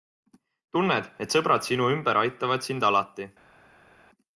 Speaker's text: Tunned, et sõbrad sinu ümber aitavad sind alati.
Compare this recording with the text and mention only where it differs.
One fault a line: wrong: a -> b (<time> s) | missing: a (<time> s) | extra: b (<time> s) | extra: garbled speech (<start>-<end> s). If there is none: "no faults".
no faults